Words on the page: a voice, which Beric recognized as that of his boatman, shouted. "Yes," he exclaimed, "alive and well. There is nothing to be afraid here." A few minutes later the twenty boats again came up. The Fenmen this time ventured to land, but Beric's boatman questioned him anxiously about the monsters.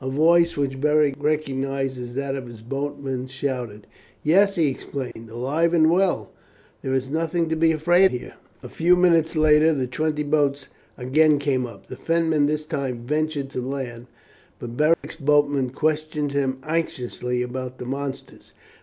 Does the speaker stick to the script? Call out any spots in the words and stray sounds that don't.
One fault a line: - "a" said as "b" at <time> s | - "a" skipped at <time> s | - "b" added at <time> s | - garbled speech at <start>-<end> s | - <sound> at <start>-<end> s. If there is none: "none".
- dropout at 5.1-5.2 s
- dropout at 14.9-15.0 s